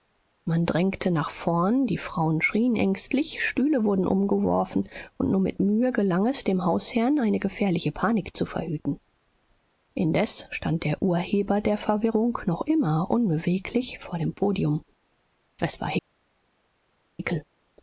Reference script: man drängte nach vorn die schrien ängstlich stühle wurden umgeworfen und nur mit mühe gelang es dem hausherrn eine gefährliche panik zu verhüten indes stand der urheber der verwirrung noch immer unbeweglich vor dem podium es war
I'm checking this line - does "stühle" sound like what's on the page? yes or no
yes